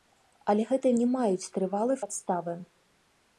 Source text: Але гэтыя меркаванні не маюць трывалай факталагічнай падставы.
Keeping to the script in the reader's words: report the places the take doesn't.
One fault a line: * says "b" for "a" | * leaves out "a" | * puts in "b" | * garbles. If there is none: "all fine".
* leaves out "меркаванні"
* leaves out "факталагічнай"